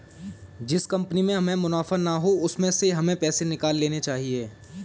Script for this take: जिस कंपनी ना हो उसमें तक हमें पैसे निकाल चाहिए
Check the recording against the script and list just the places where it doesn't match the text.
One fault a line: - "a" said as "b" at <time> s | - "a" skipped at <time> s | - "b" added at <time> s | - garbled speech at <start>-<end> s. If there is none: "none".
- "में हमें मुनाफा" added at 1.2 s
- "तक" said as "से" at 2.7 s
- "लेने" added at 3.8 s